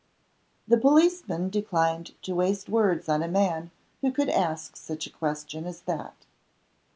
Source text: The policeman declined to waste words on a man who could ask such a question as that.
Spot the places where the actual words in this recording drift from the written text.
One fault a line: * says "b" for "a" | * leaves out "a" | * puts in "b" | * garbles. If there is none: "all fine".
all fine